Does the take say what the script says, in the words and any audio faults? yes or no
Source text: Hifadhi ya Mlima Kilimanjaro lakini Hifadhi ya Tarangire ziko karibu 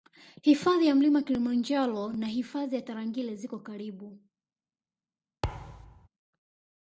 no